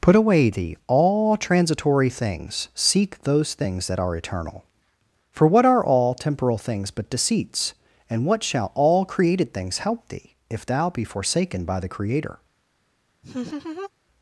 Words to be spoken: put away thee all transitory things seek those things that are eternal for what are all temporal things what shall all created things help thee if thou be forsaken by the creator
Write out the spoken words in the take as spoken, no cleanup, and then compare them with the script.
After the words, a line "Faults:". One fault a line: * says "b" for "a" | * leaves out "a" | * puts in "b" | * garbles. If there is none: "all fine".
put away thee all transitory things seek those things that are eternal for what are all temporal things but deceits and what shall all created things help thee if thou be forsaken by the creator
Faults:
* puts in "but deceits and"